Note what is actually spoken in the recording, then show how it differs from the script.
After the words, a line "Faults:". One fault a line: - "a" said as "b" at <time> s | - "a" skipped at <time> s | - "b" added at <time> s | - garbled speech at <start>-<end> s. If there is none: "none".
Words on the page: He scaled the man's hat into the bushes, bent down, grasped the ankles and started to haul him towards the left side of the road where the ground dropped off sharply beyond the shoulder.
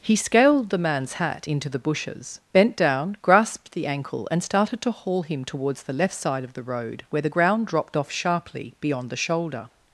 He scaled the man's hat into the bushes, bent down, grasped the ankle and started to haul him towards the left side of the road where the ground dropped off sharply beyond the shoulder.
Faults:
- "ankles" said as "ankle" at 3.8 s